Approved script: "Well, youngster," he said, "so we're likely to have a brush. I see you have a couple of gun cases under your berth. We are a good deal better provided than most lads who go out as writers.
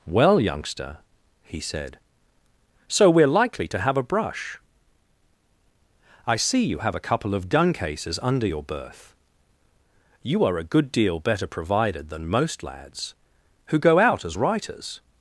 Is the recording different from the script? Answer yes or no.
yes